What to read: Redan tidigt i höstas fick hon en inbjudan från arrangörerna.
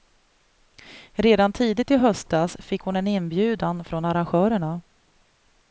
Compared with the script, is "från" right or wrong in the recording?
right